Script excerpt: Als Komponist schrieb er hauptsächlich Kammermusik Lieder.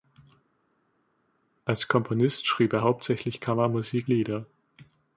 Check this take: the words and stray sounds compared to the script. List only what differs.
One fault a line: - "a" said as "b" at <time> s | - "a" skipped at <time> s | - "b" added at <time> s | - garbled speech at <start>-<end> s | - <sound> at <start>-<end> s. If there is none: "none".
none